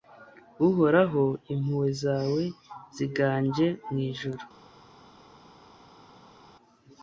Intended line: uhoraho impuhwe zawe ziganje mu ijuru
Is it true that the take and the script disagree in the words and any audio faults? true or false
false